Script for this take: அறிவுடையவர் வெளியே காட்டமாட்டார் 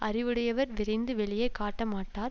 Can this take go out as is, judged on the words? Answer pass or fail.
fail